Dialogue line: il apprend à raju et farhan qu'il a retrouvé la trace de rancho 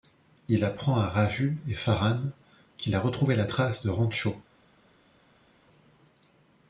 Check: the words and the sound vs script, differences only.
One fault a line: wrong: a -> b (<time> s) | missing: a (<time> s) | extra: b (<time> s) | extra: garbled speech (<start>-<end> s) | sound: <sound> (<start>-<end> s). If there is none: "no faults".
no faults